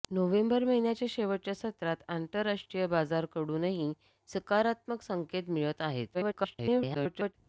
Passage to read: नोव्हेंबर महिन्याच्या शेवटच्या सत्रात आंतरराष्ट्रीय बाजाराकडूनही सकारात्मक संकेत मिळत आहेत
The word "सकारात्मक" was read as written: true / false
true